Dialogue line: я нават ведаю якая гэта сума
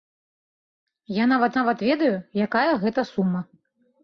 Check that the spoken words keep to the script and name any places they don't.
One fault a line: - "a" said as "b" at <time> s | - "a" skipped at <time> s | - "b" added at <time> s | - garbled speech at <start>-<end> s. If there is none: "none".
- "нават" added at 1.6 s